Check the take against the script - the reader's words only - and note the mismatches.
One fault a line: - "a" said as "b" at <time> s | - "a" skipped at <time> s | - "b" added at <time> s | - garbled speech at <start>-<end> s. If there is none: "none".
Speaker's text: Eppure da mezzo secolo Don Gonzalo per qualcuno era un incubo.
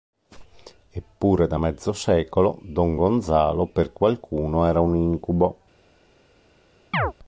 none